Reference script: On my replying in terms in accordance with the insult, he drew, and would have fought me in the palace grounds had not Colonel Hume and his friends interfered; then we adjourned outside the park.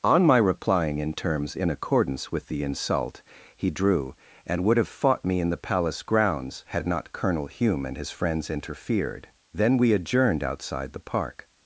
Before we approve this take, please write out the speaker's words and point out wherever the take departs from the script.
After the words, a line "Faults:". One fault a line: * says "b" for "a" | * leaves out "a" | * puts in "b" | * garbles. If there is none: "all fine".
On my replying in terms in accordance with the insult, he drew, and would have fought me in the palace grounds had not Colonel Hume and his friends interfered; then we adjourned outside the park.
Faults:
all fine